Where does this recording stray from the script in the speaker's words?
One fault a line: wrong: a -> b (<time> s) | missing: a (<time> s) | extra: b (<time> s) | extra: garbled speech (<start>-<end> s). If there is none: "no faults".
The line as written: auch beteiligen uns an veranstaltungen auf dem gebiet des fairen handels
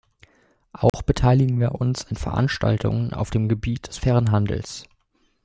extra: wir (1.6 s)